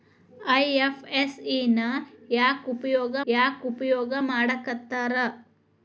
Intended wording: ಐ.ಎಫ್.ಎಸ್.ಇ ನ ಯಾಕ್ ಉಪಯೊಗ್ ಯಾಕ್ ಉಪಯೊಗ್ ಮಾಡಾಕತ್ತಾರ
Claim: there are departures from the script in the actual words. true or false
false